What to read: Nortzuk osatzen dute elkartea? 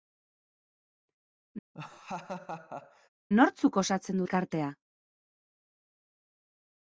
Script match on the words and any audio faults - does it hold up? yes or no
no